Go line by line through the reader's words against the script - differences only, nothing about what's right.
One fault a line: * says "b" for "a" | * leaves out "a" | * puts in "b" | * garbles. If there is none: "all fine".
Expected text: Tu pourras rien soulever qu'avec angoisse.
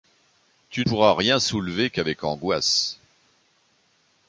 all fine